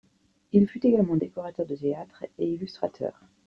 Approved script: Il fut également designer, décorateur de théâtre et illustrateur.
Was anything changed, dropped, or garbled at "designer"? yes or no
yes